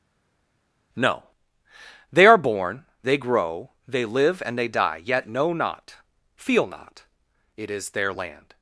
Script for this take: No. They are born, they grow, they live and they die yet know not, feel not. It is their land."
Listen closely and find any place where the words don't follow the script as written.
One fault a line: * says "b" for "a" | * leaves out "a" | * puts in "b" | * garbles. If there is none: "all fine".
all fine